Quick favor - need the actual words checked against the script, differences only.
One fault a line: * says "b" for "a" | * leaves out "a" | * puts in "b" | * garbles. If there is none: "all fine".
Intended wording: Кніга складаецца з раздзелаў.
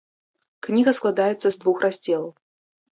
* puts in "двух"